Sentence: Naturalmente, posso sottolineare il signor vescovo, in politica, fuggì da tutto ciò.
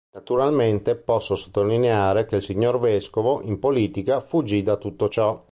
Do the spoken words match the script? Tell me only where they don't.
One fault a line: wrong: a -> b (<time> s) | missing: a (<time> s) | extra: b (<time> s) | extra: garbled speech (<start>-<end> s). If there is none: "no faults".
extra: che (2.2 s)